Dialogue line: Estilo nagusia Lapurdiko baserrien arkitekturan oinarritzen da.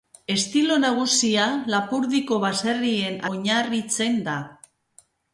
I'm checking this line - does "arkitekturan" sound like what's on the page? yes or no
no